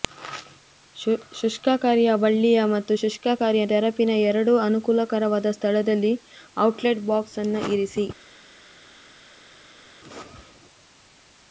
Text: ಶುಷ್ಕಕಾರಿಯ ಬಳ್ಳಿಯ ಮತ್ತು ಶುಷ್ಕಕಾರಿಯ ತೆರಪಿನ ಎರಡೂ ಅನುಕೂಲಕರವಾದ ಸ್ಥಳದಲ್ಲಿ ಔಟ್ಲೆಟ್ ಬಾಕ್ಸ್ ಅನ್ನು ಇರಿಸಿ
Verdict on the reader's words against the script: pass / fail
pass